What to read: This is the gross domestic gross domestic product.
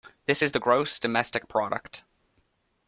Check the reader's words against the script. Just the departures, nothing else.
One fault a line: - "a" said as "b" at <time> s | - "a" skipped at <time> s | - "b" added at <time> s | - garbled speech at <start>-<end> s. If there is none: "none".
- "gross domestic" skipped at 1.5 s